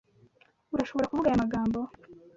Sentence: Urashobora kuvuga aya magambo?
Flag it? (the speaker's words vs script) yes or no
no